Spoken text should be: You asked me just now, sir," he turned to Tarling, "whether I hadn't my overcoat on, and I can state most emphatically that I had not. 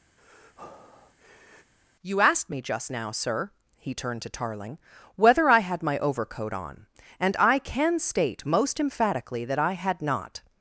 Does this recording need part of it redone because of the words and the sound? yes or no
yes